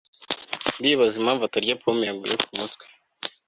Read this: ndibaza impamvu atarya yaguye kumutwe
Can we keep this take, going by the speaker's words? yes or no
no